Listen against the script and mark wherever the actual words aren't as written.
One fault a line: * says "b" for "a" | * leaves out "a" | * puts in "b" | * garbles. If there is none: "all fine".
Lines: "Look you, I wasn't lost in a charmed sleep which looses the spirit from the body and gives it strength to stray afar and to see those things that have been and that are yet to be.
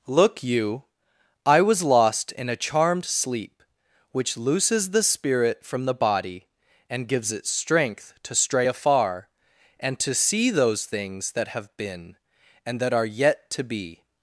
* says "was" for "wasn't"